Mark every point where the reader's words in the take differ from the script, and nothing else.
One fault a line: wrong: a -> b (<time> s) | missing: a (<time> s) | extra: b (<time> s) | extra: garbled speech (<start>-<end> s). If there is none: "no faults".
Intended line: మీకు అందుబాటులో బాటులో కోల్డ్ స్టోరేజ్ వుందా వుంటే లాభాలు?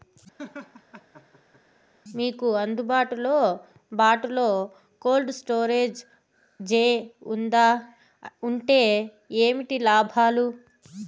extra: జే (6.6 s)
extra: ఏంటి (9.4 s)